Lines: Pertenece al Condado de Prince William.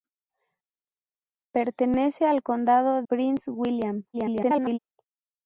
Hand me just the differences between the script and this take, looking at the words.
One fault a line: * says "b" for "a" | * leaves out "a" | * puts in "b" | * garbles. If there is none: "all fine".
* leaves out "de"
* garbles